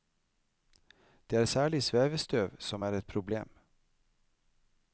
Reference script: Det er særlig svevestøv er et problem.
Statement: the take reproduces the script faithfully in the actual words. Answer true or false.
false